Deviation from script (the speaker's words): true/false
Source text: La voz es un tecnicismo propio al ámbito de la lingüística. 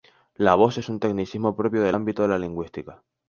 true